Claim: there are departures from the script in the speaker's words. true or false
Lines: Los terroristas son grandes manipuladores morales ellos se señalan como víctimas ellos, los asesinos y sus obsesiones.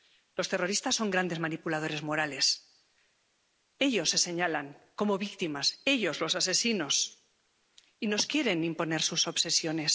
true